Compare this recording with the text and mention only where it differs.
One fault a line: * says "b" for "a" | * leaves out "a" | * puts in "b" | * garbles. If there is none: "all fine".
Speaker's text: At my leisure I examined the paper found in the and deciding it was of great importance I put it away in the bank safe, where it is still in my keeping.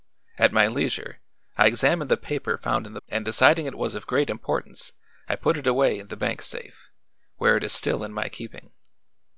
all fine